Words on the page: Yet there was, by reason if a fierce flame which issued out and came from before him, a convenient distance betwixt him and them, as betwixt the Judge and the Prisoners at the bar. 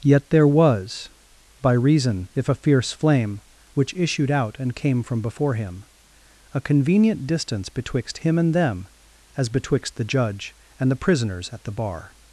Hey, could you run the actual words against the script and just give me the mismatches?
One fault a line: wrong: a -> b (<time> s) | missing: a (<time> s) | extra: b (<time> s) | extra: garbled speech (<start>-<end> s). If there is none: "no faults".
no faults